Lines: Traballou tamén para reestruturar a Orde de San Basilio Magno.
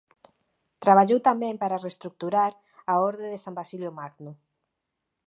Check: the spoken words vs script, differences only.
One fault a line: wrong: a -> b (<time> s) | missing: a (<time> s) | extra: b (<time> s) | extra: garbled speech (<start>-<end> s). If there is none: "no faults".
no faults